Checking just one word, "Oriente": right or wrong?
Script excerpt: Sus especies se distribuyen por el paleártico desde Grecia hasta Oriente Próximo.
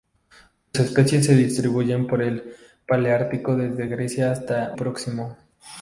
wrong